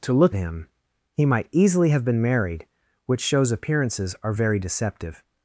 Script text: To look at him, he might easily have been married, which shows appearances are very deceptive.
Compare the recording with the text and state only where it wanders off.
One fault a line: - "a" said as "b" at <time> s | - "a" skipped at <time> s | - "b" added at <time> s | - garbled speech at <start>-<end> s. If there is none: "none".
- "at" skipped at 0.3 s